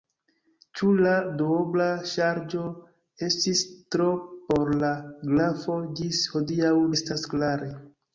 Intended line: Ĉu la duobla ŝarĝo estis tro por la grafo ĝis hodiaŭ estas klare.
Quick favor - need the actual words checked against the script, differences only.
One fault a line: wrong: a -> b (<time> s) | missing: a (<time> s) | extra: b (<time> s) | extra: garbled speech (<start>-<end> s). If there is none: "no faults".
no faults